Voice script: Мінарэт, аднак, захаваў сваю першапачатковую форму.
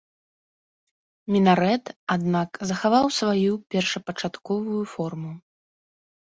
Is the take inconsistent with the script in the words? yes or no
no